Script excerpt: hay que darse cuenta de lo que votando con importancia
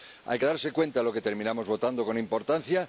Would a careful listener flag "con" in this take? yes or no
no